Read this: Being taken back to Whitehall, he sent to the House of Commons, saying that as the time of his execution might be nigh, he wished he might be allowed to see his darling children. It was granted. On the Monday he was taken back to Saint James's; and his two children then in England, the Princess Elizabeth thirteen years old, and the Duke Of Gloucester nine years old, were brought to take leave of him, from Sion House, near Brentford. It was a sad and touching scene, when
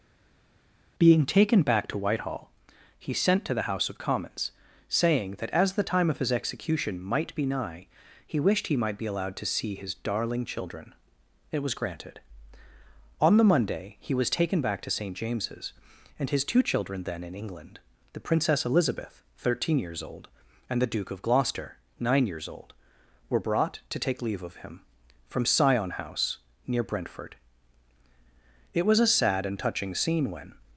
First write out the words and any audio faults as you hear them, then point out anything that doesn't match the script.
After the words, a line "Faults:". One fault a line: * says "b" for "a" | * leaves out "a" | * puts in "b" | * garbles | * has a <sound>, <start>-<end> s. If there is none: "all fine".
Being taken back to Whitehall, he sent to the House of Commons, saying that as the time of his execution might be nigh, he wished he might be allowed to see his darling children. It was granted. On the Monday he was taken back to Saint James's; and his two children then in England, the Princess Elizabeth thirteen years old, and the Duke Of Gloucester nine years old, were brought to take leave of him, from Sion House, near Brentford. It was a sad and touching scene, when
Faults:
all fine